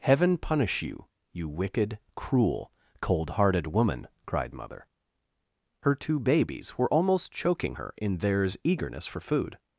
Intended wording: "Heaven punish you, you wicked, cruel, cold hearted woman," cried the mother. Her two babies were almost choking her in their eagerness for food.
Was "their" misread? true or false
true